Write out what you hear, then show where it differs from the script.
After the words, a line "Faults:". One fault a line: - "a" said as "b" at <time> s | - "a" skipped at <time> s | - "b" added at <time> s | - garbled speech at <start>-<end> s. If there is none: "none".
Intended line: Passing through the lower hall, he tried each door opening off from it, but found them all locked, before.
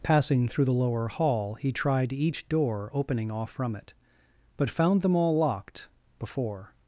Passing through the lower hall, he tried each door opening off from it, but found them all locked, before.
Faults:
none